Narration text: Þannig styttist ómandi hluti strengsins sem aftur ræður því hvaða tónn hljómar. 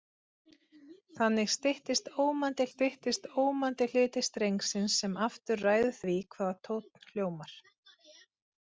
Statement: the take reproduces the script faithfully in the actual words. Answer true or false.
false